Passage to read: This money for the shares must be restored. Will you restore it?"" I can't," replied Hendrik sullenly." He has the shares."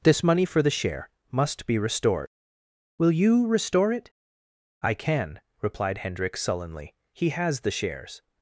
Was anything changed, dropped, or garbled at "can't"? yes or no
yes